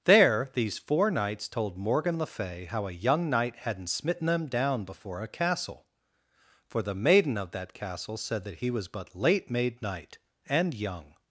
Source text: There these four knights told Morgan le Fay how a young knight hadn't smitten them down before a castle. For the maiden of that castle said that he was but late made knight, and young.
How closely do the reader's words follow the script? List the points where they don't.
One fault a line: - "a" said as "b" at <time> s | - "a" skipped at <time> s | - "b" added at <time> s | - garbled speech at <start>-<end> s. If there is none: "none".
none